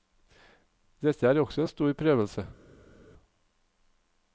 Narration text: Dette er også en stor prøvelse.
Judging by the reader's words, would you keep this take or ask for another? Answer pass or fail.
pass